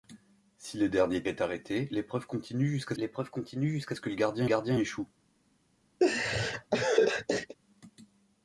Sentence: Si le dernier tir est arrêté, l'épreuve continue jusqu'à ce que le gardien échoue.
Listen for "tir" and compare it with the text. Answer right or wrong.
wrong